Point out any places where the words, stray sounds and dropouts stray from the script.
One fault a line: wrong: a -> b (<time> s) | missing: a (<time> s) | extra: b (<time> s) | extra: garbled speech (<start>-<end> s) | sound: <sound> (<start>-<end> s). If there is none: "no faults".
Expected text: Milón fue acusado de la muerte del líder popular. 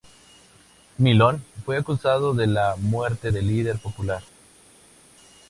no faults